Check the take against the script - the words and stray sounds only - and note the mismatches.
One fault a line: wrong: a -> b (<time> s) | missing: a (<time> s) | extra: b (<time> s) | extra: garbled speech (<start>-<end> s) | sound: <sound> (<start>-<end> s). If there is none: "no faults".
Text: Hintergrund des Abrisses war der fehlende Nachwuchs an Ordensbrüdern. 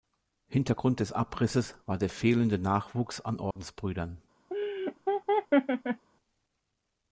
sound: dropout (3.5-3.6 s)
sound: laugh (4.5-6.1 s)